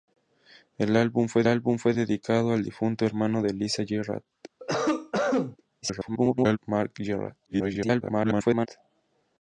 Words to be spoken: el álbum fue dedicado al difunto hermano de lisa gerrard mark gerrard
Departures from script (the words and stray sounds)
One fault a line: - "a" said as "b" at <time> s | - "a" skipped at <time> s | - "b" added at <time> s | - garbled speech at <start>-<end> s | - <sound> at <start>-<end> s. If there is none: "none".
- "álbum fue" added at 1.5 s
- cough at 4.6-5.6 s
- garbled speech at 5.8-6.6 s
- garbled speech at 7.4-8.7 s